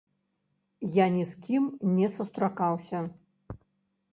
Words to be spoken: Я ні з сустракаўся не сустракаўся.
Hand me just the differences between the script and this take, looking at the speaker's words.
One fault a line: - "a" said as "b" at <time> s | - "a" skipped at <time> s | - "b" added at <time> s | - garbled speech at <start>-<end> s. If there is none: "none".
- "сустракаўся" said as "кім" at 1.5 s